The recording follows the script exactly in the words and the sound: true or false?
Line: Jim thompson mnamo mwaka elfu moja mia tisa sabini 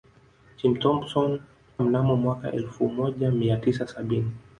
true